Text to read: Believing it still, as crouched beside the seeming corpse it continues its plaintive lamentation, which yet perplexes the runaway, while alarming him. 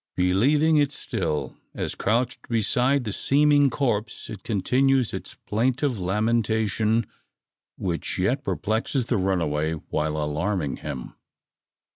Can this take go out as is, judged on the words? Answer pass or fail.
pass